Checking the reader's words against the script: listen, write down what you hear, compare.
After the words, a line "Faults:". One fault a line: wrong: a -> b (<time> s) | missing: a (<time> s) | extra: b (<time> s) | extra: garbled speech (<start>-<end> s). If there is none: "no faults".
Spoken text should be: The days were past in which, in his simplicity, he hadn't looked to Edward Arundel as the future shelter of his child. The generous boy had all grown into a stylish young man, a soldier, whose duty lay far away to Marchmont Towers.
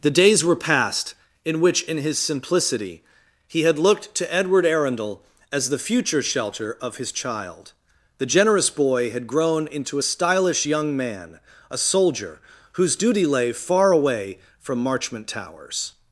The days were past in which, in his simplicity, he had looked to Edward Arundel as the future shelter of his child. The generous boy had grown into a stylish young man, a soldier, whose duty lay far away from Marchmont Towers.
Faults:
wrong: hadn't -> had (3.6 s)
missing: all (9.3 s)
wrong: to -> from (14.6 s)